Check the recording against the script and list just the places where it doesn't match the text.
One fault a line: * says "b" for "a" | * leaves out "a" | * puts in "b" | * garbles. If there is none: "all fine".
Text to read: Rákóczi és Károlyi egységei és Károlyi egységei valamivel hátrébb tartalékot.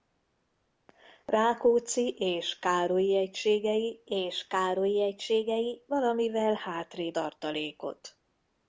all fine